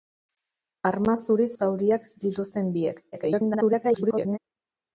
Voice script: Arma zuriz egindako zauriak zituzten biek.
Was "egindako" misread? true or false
true